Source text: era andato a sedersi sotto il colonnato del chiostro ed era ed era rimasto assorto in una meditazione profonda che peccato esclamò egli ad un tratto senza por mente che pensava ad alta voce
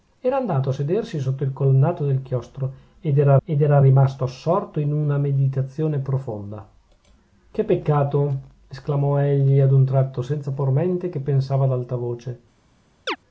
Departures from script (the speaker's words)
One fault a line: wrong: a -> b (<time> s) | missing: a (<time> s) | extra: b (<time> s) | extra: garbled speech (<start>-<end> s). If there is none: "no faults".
no faults